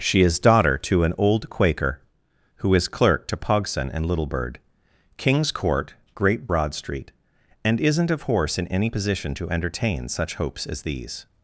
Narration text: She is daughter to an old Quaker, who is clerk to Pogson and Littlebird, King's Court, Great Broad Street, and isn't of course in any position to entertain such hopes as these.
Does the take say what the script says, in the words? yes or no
no